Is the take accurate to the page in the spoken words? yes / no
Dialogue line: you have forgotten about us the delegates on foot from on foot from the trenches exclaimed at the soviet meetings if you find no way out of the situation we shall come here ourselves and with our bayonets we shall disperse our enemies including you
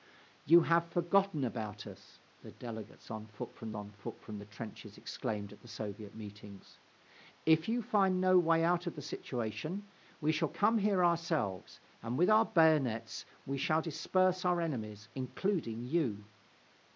yes